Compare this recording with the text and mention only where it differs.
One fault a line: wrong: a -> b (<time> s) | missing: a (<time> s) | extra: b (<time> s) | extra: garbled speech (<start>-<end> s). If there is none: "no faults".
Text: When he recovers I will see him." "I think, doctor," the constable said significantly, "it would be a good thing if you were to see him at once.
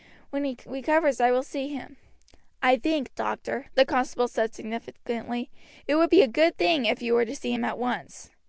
no faults